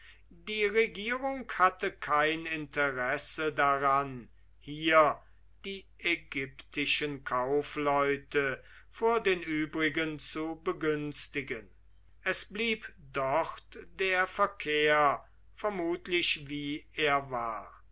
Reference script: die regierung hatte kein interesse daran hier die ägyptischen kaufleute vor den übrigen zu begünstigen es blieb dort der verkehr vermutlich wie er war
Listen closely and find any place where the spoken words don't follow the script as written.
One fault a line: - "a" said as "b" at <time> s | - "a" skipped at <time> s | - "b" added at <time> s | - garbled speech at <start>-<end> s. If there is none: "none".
none